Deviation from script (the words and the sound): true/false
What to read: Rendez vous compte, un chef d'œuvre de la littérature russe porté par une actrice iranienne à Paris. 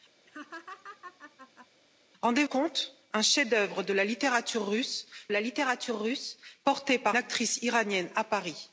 true